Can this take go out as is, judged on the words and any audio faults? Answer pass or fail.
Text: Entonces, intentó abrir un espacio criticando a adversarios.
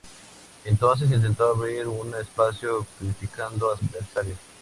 pass